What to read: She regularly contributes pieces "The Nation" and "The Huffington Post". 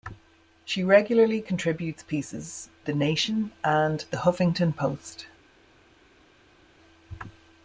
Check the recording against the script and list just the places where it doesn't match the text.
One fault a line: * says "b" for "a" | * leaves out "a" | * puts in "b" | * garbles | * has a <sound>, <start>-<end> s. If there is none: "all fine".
all fine